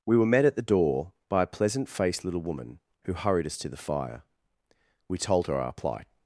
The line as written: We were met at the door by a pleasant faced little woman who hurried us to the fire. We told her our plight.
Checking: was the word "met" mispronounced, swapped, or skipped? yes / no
no